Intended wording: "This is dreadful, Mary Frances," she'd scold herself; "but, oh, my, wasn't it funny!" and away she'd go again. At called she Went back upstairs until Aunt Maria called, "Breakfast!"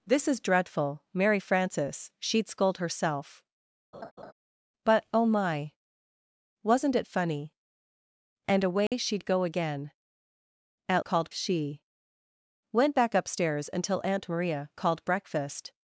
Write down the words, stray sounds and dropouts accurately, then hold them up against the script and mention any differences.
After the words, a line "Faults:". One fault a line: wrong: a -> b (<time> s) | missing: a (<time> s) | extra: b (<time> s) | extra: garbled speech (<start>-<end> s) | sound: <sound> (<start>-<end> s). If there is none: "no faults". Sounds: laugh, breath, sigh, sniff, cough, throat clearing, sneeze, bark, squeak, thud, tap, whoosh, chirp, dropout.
"This is dreadful, Mary Frances," she'd scold herself; "but, oh, my, wasn't it funny!" and away she'd go again. At called she Went back upstairs until Aunt Maria called, "Breakfast!"
Faults:
sound: laugh (3.9-4.3 s)
sound: dropout (8.9-8.9 s)